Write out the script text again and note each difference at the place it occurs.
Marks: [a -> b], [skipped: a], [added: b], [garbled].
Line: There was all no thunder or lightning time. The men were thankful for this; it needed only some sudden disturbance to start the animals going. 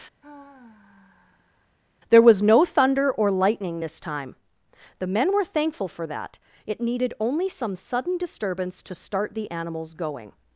There was [skipped: all] no thunder or lightning [added: this] time. The men were thankful for [this; -> that] it needed only some sudden disturbance to start the animals going.